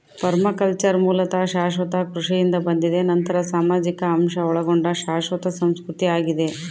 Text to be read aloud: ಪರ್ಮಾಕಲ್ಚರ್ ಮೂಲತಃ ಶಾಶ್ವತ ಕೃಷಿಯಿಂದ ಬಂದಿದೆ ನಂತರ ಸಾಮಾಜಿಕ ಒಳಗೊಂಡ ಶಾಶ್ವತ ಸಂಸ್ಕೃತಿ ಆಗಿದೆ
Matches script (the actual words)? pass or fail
fail